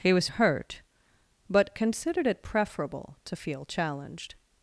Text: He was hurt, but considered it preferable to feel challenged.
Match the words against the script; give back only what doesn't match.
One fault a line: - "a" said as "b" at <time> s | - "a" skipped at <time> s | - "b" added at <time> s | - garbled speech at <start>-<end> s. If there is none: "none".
none